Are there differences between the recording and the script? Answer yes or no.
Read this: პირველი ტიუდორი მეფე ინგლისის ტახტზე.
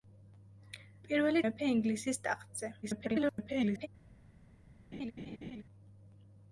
yes